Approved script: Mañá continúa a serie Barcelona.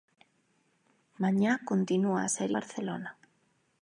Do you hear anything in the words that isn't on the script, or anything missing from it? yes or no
no